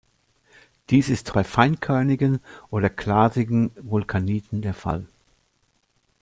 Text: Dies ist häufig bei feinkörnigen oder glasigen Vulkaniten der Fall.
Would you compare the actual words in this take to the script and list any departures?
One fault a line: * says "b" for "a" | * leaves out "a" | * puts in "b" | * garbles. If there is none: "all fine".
* leaves out "häufig"